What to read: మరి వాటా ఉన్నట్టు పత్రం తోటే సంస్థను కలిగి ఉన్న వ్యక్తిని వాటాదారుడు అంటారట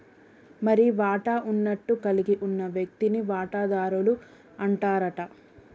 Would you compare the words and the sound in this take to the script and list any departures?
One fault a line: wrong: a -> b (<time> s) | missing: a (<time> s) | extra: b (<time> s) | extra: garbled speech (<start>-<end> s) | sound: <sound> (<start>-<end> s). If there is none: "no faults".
missing: పత్రం తోటే సంస్థను (1.9 s)